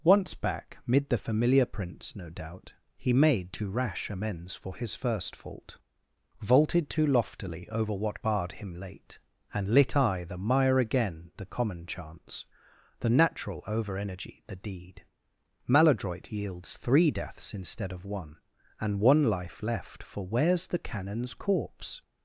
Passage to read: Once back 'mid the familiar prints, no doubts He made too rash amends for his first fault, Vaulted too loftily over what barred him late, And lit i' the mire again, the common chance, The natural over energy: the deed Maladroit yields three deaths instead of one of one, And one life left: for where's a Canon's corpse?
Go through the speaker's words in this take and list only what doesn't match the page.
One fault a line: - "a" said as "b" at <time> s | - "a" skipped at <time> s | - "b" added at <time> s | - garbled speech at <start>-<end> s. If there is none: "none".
- "doubts" said as "doubt" at 2.3 s
- "of one" skipped at 18.4 s
- "a" said as "the" at 20.7 s